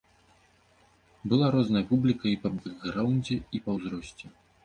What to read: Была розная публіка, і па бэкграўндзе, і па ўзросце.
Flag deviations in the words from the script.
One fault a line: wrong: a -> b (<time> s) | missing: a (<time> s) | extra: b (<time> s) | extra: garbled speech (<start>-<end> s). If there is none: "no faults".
no faults